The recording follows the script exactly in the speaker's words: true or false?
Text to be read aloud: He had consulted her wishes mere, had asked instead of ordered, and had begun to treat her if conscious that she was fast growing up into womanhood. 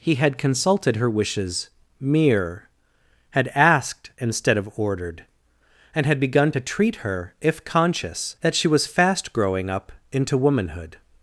true